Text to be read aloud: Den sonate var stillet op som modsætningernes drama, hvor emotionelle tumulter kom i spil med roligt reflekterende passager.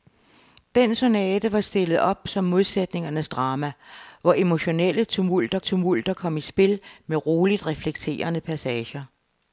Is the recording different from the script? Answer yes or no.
yes